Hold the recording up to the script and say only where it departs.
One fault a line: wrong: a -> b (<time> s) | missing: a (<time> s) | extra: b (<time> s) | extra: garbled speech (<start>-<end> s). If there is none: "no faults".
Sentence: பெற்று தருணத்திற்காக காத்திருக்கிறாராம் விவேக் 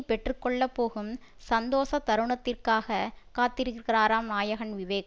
extra: கொள்ள போகும் சந்தோஷ (0.4 s)
extra: நாயகன் (4.3 s)